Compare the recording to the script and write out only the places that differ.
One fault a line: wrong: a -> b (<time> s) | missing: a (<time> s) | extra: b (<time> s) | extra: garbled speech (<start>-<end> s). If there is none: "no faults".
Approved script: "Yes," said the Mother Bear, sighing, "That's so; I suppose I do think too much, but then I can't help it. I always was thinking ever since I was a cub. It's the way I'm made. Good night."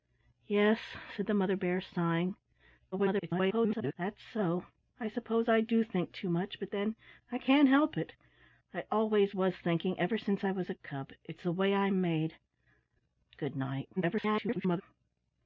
extra: garbled speech (2.9-3.9 s)
extra: garbled speech (14.0-14.8 s)